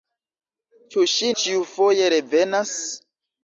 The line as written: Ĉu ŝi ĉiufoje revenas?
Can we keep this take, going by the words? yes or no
yes